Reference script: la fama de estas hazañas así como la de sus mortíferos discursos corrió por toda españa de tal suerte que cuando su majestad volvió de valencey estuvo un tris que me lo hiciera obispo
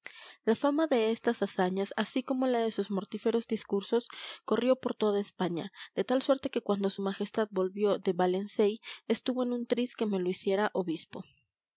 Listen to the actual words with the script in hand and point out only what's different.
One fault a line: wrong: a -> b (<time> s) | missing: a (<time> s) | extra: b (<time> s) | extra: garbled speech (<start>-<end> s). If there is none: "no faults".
extra: en (9.4 s)